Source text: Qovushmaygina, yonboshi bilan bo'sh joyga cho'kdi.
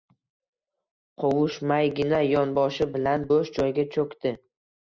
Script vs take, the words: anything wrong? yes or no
no